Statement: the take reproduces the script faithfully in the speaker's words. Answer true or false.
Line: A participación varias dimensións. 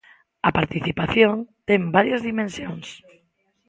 false